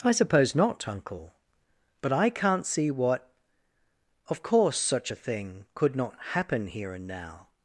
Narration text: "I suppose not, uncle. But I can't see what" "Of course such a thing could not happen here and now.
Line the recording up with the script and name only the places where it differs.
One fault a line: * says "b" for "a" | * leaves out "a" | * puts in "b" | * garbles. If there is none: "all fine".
all fine